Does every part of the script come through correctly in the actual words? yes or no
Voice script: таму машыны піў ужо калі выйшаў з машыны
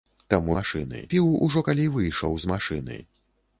yes